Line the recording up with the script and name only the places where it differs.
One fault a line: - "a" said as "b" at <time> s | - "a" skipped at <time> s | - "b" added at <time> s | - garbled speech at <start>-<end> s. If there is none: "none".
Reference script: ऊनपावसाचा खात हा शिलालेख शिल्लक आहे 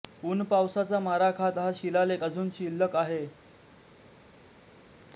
- "मारा" added at 1.0 s
- "अजून" added at 2.2 s